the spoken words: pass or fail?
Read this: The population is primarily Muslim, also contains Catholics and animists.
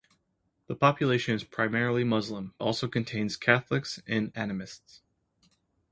pass